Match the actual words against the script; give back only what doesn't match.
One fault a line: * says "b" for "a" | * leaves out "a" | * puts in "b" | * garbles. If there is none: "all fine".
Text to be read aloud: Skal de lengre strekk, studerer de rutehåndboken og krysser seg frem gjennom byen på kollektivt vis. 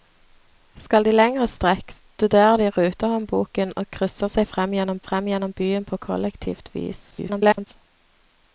* puts in "frem gjennom"
* garbles